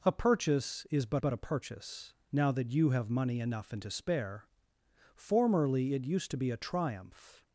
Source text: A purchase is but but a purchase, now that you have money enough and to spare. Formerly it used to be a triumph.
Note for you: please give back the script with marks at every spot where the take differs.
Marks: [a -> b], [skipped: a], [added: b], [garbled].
A purchase is but but a purchase, now that you have money enough and to spare. Formerly it used to be a triumph.